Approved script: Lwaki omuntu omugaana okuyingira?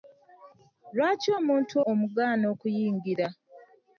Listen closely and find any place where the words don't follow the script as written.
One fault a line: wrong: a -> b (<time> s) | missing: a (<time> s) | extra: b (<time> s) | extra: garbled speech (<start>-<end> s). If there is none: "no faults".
no faults